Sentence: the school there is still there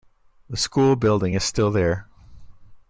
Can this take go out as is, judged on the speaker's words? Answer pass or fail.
fail